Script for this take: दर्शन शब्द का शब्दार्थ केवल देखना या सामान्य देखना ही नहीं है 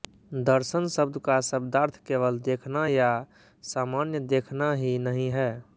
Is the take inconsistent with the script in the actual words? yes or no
no